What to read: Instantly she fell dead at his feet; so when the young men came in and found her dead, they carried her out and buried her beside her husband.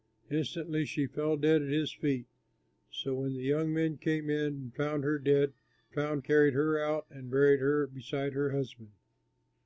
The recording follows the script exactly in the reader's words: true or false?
false